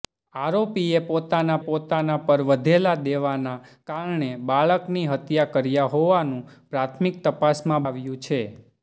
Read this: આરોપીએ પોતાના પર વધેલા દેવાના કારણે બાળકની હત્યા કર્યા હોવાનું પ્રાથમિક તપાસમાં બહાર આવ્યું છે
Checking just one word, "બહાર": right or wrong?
wrong